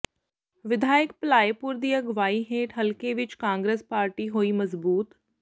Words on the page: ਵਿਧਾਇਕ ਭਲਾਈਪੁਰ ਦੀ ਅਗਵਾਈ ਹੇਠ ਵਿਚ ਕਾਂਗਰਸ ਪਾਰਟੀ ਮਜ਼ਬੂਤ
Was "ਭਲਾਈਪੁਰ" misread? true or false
false